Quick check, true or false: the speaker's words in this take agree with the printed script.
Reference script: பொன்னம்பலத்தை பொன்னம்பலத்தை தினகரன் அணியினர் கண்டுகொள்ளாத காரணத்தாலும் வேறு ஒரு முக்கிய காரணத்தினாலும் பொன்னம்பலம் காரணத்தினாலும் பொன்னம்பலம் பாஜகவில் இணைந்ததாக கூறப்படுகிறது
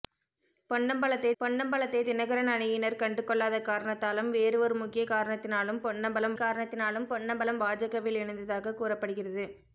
true